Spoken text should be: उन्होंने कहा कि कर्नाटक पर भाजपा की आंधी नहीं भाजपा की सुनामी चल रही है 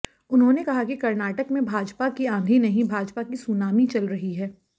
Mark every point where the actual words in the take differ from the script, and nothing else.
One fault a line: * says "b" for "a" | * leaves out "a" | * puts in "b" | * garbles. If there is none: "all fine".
* says "में" for "पर"